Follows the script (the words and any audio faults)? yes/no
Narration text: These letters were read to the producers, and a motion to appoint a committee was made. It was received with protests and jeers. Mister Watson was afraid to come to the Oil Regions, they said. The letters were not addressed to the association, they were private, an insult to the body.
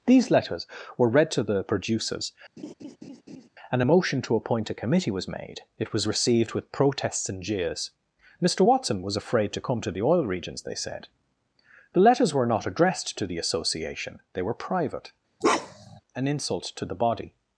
no